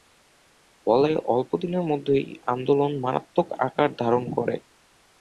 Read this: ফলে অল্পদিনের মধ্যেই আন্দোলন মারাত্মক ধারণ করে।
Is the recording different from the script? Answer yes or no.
yes